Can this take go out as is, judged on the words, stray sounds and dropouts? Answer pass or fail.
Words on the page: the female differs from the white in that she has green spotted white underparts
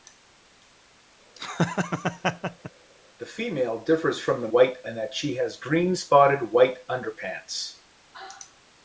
fail